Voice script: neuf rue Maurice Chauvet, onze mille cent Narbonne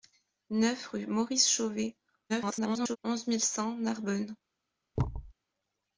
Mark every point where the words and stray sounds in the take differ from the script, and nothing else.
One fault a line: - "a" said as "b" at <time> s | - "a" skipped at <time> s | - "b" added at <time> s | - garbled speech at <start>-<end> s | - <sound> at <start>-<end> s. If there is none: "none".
- garbled speech at 2.3-3.0 s
- thud at 5.0-5.3 s